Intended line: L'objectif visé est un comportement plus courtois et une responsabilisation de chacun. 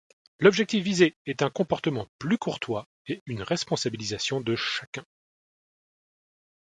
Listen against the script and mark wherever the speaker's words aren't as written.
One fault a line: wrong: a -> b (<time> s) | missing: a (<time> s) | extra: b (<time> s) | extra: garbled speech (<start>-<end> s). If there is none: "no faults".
no faults